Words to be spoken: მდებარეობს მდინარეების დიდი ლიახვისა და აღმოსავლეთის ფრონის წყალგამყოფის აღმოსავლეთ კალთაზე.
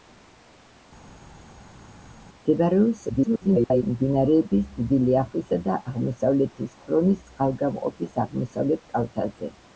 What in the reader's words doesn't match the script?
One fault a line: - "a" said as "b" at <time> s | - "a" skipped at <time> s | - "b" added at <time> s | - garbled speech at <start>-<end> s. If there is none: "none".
- garbled speech at 3.1-3.8 s